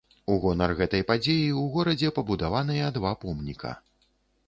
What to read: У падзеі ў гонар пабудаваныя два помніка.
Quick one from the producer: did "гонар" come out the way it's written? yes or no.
no